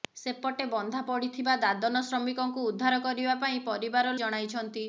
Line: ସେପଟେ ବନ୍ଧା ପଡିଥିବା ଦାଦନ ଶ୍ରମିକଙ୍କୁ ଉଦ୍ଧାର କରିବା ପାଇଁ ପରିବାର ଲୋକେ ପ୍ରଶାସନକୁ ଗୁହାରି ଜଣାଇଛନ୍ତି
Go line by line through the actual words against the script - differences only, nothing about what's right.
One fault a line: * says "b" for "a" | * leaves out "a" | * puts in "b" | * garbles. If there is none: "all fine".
* leaves out "ଲୋକେ ପ୍ରଶାସନକୁ ଗୁହାରି"